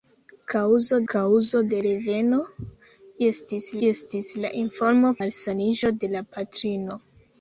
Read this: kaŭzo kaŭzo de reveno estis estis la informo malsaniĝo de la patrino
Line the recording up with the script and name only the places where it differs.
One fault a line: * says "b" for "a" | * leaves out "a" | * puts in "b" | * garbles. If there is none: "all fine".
all fine